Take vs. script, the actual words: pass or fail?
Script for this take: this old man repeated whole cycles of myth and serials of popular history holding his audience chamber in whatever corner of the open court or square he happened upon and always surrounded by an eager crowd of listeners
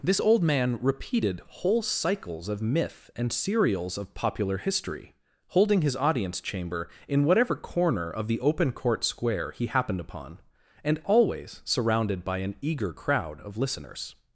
fail